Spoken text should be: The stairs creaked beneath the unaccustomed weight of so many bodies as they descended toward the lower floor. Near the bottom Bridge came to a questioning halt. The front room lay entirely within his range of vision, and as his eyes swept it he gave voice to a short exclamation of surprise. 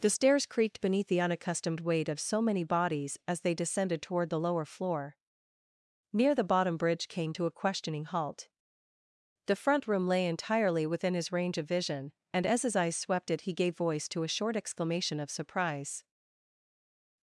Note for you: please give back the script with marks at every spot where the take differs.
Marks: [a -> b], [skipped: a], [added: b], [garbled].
The stairs creaked beneath the unaccustomed weight of so many bodies as they descended toward the lower floor. Near the bottom Bridge came to a questioning halt. The front room lay entirely within his range of vision, and as his eyes swept it he gave voice to a short exclamation of surprise.